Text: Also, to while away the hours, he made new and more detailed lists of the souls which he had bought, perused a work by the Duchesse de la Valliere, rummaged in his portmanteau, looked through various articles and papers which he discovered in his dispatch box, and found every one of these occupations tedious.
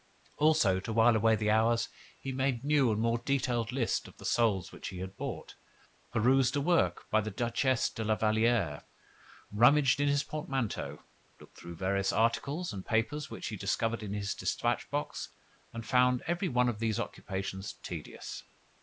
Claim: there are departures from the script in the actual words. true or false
false